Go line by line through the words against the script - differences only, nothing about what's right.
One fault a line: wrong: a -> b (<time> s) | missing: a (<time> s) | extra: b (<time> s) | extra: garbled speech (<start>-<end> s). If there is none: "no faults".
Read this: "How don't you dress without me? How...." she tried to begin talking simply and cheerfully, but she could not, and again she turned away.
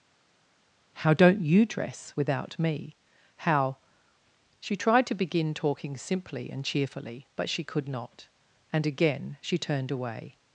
no faults